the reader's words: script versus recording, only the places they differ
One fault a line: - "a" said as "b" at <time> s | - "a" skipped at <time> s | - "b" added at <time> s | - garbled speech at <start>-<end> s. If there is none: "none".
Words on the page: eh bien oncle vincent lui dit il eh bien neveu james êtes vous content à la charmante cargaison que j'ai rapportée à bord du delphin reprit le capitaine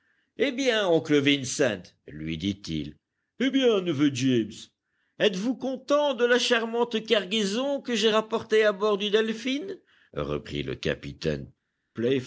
- "à" said as "de" at 6.1 s